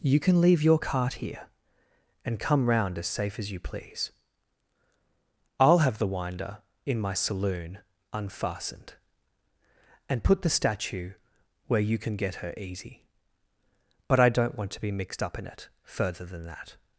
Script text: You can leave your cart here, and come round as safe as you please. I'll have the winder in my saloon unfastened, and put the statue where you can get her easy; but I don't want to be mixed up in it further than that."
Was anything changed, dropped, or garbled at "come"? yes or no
no